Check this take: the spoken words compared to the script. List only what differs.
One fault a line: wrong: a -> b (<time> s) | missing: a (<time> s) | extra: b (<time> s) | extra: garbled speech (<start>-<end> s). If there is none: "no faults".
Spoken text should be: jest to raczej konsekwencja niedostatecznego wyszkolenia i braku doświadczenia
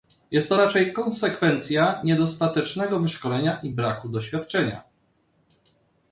no faults